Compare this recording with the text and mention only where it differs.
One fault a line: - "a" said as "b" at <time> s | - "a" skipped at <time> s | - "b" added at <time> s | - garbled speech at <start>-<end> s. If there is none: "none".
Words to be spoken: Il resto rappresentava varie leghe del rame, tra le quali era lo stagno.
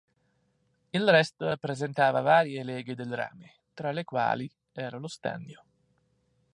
none